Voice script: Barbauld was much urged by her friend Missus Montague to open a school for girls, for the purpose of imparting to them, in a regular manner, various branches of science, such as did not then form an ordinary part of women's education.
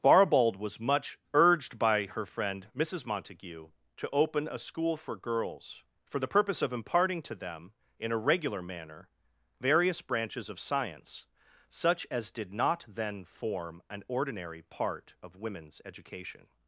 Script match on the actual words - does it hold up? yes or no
yes